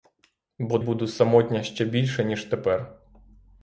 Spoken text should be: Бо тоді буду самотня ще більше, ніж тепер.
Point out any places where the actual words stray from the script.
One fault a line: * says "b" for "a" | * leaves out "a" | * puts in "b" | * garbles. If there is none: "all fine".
* leaves out "тоді"